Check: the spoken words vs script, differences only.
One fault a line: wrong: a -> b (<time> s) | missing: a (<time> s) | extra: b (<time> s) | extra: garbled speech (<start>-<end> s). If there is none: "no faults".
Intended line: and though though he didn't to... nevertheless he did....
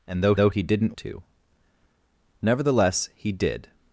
no faults